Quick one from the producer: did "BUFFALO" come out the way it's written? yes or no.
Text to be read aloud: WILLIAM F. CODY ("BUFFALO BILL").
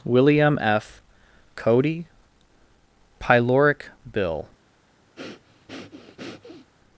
no